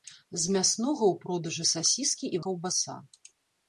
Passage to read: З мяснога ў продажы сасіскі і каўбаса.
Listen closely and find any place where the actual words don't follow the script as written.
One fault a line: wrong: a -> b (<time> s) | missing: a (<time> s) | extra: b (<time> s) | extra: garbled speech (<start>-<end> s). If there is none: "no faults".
no faults